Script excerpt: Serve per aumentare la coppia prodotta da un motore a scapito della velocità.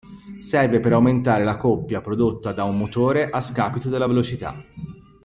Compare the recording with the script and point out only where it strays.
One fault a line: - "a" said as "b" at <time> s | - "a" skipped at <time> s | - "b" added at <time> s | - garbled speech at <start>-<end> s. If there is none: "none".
none